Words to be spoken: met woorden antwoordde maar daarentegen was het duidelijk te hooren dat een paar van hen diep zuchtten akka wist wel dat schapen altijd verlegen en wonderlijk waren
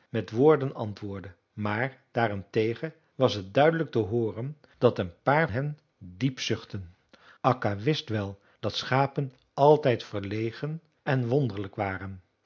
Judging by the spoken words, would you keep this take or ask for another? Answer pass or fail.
fail